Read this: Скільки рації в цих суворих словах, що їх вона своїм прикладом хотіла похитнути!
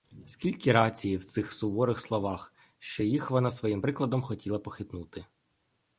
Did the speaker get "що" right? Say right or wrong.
right